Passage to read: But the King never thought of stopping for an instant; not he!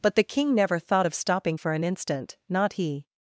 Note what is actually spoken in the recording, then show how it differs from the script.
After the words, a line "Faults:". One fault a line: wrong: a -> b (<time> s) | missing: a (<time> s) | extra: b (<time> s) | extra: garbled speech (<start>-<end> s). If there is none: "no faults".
But the King never thought of stopping for an instant; not he!
Faults:
no faults